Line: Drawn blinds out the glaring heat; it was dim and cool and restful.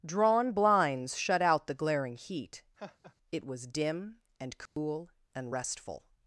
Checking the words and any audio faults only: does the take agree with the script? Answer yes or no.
no